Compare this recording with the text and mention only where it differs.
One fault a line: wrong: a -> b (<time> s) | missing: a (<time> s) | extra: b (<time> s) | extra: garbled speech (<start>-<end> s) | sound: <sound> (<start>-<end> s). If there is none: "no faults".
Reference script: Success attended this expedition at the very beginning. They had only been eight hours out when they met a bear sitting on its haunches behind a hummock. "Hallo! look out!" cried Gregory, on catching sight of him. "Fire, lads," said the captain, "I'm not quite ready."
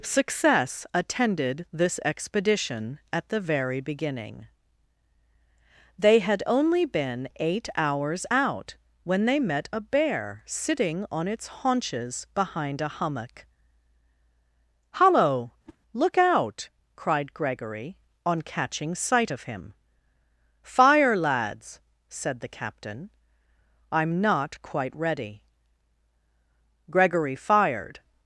sound: whoosh (15.6-15.8 s)
extra: Gregory fired (26.9 s)